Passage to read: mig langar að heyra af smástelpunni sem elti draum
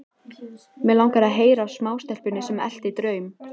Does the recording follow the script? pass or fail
pass